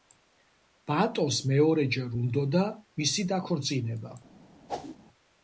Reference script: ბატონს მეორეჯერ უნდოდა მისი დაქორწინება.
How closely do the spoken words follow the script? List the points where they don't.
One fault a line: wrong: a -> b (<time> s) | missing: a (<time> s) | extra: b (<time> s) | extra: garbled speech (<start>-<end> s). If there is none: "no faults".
no faults